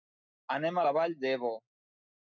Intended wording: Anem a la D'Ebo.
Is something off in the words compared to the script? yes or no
yes